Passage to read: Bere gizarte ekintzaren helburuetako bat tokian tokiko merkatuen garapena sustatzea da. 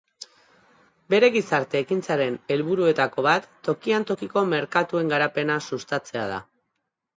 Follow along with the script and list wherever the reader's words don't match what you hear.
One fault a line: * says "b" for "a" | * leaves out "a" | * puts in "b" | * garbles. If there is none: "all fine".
all fine